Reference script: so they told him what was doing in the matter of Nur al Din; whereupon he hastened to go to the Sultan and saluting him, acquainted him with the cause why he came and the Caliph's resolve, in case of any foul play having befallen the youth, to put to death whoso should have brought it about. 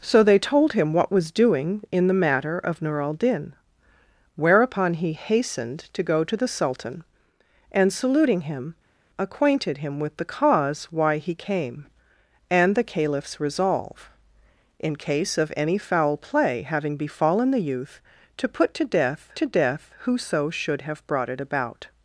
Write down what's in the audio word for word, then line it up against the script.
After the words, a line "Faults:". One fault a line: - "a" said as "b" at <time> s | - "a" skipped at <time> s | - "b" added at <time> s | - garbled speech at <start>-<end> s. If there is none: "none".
so they told him what was doing in the matter of Nur al Din; whereupon he hastened to go to the Sultan and saluting him, acquainted him with the cause why he came and the Caliph's resolve, in case of any foul play having befallen the youth, to put to death to death whoso should have brought it about.
Faults:
- "to death" added at 19.4 s